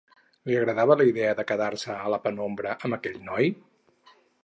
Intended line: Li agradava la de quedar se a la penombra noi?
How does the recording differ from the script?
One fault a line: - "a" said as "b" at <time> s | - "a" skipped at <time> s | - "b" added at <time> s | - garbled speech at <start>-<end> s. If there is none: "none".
- "idea" added at 1.1 s
- "amb aquell" added at 2.8 s